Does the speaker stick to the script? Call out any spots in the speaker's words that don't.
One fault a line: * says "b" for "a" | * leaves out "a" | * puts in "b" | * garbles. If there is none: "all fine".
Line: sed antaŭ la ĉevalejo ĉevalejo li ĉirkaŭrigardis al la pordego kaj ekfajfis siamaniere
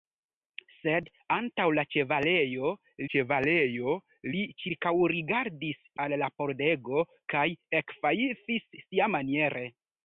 all fine